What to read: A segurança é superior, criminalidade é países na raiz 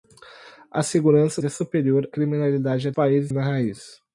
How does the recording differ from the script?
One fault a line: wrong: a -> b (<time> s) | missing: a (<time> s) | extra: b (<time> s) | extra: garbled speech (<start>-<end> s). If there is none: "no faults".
no faults